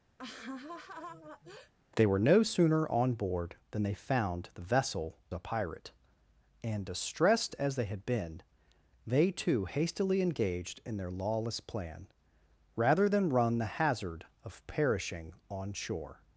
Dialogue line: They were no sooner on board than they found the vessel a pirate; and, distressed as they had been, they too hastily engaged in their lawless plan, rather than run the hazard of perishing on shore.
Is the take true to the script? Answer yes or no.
yes